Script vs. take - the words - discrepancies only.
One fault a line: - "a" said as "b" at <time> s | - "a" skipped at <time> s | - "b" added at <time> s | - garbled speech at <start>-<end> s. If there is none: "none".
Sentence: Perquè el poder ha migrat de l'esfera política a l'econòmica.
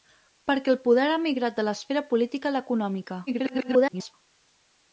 - garbled speech at 3.3-4.1 s